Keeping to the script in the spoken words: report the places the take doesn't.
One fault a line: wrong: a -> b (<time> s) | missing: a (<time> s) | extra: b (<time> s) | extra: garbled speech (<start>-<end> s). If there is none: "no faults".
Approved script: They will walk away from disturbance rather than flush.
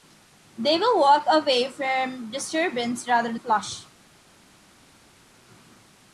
missing: than (3.4 s)